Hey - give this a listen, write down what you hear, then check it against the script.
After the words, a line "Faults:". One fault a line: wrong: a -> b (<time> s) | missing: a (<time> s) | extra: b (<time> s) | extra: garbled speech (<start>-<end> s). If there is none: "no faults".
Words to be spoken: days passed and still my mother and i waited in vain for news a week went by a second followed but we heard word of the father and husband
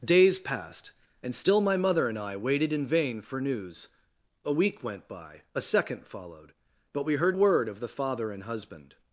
days passed and still my mother and i waited in vain for news a week went by a second followed but we heard word of the father and husband
Faults:
no faults